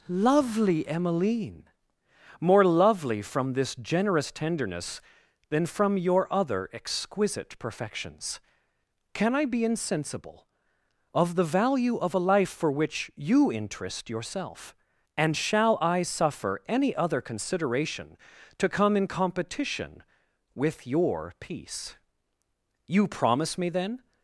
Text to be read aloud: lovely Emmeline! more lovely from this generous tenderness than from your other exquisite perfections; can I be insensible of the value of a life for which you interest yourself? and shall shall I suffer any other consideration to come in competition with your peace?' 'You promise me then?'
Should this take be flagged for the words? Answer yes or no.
yes